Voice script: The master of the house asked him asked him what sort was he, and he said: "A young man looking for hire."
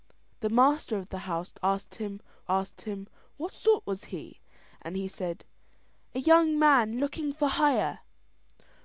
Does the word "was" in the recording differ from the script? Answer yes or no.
no